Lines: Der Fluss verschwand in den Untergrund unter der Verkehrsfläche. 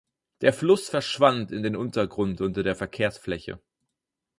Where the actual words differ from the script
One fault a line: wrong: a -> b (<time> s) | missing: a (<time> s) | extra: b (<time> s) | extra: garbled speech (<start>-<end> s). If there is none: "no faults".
no faults